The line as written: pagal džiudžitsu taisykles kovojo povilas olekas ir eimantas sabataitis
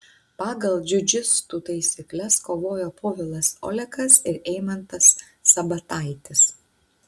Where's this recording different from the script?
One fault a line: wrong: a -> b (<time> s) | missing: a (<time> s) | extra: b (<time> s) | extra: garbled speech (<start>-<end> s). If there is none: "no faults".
no faults